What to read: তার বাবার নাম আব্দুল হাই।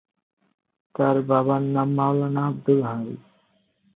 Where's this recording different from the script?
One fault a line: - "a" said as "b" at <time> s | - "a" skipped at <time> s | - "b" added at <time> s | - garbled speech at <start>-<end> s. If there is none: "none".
- "মাওলানা" added at 2.0 s